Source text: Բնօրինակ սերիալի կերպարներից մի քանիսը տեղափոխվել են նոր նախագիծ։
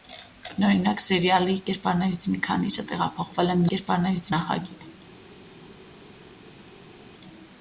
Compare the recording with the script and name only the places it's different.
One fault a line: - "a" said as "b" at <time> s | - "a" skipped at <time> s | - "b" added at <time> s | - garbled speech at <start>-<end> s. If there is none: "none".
- "նոր" said as "կերպարներից" at 3.7 s